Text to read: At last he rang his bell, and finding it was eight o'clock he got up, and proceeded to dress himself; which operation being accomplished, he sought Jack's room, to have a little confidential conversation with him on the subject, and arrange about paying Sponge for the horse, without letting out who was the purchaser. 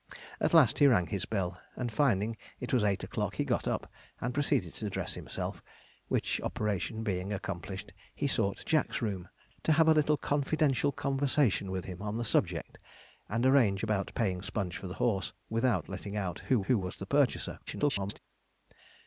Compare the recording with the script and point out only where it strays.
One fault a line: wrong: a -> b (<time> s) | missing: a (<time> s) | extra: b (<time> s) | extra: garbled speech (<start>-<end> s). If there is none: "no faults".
extra: who (16.7 s)
extra: garbled speech (17.7-18.2 s)